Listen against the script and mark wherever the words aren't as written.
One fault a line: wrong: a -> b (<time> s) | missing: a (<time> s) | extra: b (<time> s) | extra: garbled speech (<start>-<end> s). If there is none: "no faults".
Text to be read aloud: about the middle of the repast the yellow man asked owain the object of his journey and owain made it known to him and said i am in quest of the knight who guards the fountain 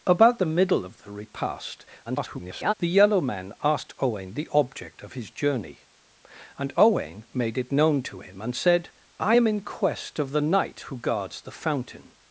extra: garbled speech (2.0-2.7 s)